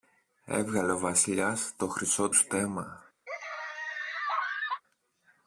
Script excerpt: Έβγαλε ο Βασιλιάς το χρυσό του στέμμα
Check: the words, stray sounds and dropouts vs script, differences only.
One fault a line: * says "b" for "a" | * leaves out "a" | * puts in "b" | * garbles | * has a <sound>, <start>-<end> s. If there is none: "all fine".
* leaves out "του"
* has a laugh, 3.3-4.8 s